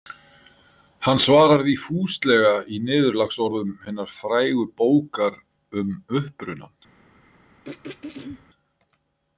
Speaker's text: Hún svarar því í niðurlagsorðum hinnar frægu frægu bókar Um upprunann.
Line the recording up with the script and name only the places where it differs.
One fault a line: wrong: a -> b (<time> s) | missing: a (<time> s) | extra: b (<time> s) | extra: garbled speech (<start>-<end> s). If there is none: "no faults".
wrong: Hún -> Hann (1.1 s)
extra: fúslega (1.8 s)
missing: frægu (4.6 s)